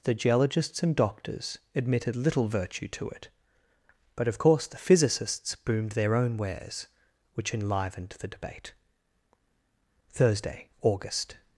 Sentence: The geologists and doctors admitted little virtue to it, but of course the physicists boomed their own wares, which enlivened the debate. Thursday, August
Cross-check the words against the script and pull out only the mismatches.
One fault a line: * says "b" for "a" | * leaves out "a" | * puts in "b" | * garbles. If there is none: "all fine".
all fine